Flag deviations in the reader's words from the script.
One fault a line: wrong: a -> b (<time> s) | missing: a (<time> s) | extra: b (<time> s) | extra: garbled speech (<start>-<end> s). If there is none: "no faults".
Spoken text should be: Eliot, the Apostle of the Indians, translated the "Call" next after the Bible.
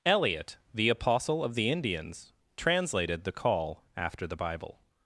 missing: next (3.8 s)